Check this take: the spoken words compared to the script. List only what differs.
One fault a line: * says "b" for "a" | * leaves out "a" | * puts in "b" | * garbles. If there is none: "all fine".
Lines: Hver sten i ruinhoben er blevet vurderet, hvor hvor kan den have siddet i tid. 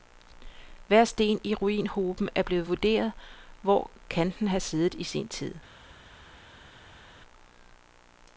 * leaves out "hvor"
* puts in "sin"